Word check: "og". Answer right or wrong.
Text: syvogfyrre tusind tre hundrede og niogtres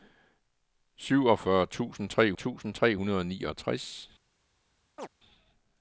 right